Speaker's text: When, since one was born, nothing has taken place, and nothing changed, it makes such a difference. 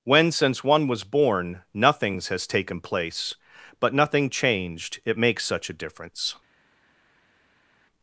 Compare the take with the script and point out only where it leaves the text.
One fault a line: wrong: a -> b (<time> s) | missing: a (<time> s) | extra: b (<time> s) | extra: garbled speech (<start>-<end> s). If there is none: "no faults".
wrong: nothing -> nothings (1.8 s)
wrong: and -> but (3.8 s)